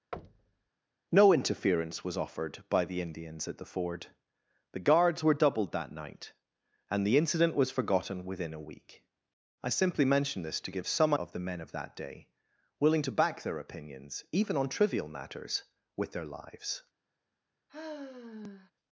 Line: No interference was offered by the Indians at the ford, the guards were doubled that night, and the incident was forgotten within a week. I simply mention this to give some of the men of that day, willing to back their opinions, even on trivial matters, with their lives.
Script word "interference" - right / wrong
right